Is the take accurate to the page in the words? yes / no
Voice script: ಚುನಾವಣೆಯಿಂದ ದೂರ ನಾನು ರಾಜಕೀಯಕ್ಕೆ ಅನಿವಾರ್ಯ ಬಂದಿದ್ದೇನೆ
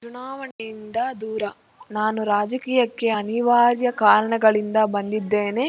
no